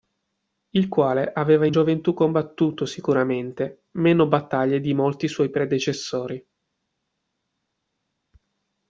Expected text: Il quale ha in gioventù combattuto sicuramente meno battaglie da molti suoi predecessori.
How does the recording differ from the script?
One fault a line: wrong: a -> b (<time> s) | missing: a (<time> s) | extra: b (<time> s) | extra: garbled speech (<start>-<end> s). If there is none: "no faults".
wrong: ha -> aveva (1.3 s)
wrong: da -> di (4.8 s)